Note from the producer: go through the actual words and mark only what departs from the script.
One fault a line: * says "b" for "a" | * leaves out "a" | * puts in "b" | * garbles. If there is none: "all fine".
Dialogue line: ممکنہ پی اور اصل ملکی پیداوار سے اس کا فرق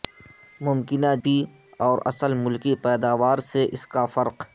all fine